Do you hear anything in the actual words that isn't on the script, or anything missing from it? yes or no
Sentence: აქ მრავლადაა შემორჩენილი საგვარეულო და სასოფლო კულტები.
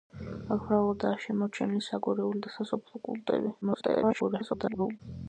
yes